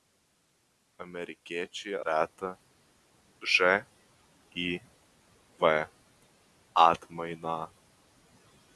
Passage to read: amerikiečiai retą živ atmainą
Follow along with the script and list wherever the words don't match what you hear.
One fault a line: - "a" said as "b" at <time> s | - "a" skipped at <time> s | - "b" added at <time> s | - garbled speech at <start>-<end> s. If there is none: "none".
none